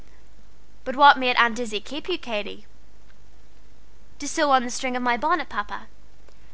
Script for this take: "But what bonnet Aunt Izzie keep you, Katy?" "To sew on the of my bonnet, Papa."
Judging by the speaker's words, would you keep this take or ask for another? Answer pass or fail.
fail